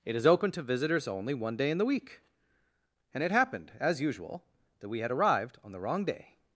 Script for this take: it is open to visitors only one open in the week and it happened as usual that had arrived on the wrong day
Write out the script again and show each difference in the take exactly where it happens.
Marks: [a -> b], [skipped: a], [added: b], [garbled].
it is open to visitors only one [open -> day] in the week and it happened as usual that [added: we] had arrived on the wrong day